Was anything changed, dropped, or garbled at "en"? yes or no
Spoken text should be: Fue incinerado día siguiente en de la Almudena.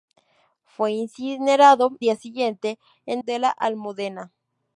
no